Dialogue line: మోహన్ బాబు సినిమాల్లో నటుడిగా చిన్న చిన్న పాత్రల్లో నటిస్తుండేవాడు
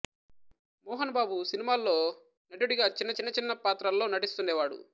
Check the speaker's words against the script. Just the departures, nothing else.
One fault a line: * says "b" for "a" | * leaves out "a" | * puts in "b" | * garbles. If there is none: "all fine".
* puts in "చిన్న"